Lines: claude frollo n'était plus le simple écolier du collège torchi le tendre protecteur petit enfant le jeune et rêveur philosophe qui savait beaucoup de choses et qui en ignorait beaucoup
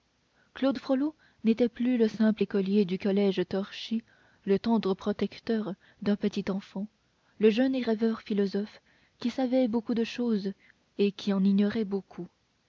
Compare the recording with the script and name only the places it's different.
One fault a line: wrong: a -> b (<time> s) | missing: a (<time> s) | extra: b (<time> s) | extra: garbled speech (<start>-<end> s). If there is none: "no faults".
extra: d'un (6.0 s)